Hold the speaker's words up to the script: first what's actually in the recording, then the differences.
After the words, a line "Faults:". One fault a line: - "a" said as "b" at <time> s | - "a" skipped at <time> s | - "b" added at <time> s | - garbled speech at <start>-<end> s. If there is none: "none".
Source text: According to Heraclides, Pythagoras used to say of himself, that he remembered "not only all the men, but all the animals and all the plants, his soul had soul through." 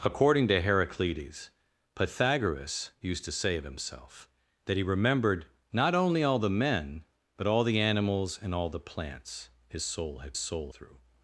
According to Heraclides, Pythagoras used to say of himself, that he remembered "not only all the men, but all the animals and all the plants, his soul had soul through."
Faults:
none